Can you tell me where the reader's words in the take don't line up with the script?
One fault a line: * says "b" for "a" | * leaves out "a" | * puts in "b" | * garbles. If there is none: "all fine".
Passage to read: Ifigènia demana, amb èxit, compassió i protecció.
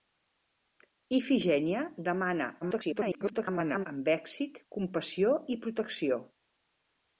* garbles